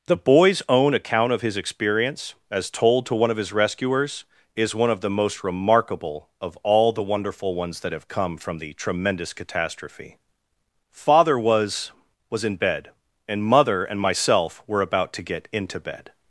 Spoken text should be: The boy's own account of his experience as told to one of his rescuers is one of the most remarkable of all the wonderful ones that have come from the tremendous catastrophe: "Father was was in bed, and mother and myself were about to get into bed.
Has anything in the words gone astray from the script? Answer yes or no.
no